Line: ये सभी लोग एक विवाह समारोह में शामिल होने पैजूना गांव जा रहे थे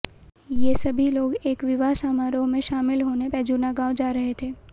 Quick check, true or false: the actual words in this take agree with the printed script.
true